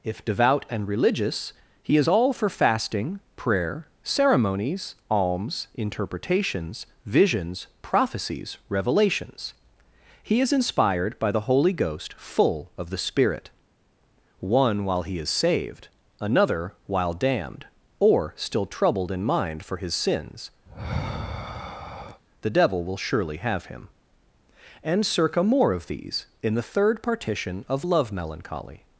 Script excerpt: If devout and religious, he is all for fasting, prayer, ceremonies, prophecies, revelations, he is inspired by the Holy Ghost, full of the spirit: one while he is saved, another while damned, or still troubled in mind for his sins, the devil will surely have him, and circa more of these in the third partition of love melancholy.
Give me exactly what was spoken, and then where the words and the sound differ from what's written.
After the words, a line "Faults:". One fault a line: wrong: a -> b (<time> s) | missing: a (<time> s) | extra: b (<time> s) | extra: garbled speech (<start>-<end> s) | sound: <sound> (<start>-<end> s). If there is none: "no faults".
If devout and religious, he is all for fasting, prayer, ceremonies, alms, interpretations, visions, prophecies, revelations, he is inspired by the Holy Ghost, full of the spirit: one while he is saved, another while damned, or still troubled in mind for his sins, the devil will surely have him, and circa more of these in the third partition of love melancholy.
Faults:
extra: alms interpretations visions (5.1 s)
sound: sigh (20.7-22.2 s)